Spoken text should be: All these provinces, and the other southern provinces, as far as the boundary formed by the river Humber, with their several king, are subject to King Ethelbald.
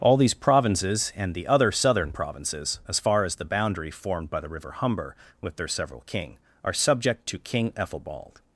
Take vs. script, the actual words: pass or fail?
pass